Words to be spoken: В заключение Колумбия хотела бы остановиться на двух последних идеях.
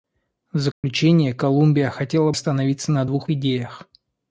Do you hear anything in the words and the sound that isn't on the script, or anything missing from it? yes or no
yes